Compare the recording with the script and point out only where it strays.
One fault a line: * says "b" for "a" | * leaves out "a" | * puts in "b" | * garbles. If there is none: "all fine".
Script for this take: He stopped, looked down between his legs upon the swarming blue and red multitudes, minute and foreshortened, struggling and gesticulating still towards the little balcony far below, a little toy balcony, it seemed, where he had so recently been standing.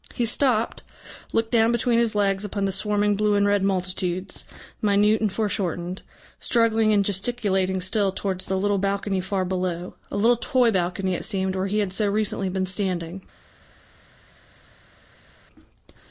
all fine